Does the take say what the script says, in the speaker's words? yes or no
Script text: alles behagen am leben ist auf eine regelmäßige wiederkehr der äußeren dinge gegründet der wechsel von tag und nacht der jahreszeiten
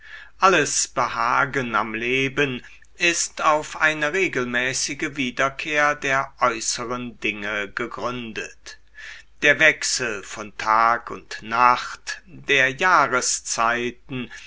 yes